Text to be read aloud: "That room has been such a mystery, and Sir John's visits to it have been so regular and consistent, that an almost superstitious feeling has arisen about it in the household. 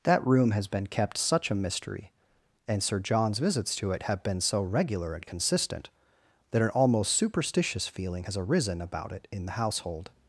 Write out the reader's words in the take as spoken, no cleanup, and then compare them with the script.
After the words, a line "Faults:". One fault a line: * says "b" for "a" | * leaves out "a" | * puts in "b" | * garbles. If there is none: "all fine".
"That room has been kept such a mystery, and Sir John's visits to it have been so regular and consistent, that an almost superstitious feeling has arisen about it in the household.
Faults:
* puts in "kept"